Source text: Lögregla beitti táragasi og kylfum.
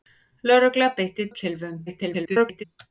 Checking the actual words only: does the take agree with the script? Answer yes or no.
no